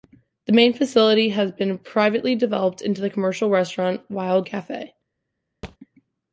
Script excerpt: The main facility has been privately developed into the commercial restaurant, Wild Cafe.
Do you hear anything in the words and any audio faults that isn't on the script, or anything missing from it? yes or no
yes